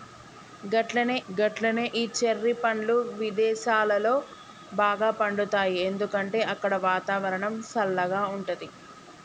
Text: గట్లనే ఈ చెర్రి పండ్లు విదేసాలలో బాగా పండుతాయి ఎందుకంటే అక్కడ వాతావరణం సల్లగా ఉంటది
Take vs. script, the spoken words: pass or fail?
fail